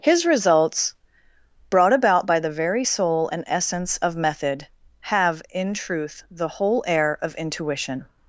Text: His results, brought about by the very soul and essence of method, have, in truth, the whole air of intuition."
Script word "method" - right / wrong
right